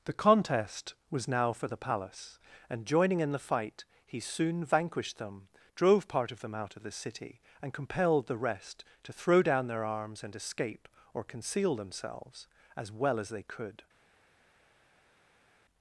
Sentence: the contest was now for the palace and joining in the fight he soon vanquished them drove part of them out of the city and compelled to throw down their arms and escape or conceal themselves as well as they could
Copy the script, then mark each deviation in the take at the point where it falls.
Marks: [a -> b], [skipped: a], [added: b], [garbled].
the contest was now for the palace and joining in the fight he soon vanquished them drove part of them out of the city and compelled [added: the rest] to throw down their arms and escape or conceal themselves as well as they could